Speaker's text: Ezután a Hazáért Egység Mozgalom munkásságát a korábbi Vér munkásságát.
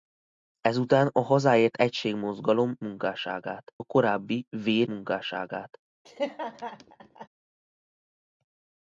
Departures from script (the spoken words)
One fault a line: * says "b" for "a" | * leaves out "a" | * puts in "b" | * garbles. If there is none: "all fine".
all fine